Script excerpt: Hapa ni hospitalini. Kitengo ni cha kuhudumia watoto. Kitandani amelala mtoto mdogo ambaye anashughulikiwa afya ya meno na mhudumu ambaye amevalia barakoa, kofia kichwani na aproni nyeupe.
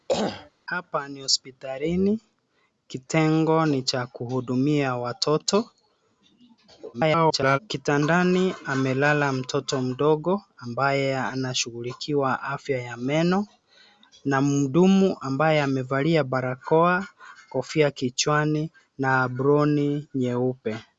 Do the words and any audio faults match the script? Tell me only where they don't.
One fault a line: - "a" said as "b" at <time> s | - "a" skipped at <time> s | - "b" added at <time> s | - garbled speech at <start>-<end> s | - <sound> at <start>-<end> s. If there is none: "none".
- throat clearing at 0.1-0.5 s
- garbled speech at 6.9-7.6 s